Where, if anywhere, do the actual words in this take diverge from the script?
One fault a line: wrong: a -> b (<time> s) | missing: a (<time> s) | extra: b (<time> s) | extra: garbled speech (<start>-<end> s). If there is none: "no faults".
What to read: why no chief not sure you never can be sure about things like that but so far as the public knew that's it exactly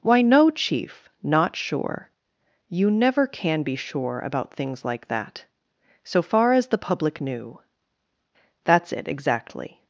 missing: but (5.4 s)